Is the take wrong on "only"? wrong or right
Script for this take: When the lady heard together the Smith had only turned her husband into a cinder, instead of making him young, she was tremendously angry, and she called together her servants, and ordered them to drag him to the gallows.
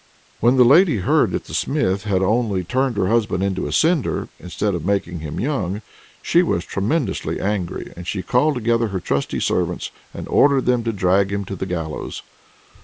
right